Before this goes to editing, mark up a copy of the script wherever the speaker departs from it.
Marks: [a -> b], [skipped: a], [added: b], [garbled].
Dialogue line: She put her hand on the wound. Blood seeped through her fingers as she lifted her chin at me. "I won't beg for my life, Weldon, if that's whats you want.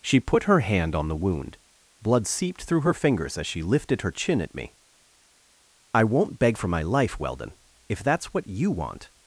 She put her hand on the wound. Blood seeped through her fingers as she lifted her chin at me. "I won't beg for my life, Weldon, if that's [whats -> what] you want.